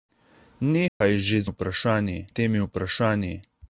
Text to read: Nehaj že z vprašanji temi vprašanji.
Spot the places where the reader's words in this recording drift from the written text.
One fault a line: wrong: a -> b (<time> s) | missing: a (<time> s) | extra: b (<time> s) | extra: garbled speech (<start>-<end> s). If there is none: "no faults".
no faults